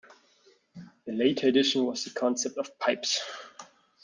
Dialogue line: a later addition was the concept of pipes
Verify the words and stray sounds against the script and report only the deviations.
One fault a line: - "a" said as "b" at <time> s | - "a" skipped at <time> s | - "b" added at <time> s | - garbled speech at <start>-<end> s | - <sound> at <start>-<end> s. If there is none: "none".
none